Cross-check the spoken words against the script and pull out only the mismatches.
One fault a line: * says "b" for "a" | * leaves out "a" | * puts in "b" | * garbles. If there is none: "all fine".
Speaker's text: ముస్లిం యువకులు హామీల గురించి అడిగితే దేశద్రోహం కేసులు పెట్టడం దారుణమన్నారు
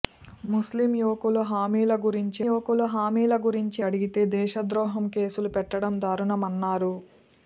* puts in "యువకులు హామీల గురించి"